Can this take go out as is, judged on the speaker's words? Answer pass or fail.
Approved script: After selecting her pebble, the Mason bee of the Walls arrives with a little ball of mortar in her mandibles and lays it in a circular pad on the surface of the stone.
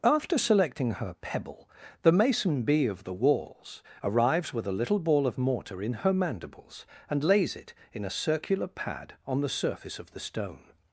pass